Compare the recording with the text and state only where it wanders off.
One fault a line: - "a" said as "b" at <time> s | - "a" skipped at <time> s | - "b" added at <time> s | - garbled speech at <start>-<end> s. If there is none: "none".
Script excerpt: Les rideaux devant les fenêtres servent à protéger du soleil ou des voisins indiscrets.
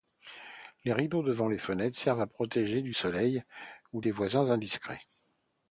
none